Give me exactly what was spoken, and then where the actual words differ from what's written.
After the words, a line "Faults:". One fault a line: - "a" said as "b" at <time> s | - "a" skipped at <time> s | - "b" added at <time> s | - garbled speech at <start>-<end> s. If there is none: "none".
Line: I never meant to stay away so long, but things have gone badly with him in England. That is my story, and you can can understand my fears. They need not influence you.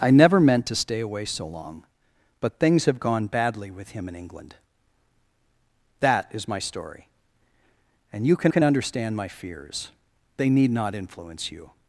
I never meant to stay away so long, but things have gone badly with him in England. That is my story, and you can can understand my fears. They need not influence you.
Faults:
none